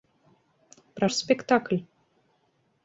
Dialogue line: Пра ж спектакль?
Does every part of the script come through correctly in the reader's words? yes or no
yes